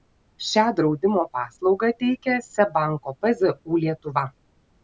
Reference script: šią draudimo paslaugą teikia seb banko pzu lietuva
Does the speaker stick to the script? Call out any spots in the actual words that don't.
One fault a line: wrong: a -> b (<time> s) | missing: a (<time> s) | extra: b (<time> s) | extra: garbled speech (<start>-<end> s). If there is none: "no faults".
no faults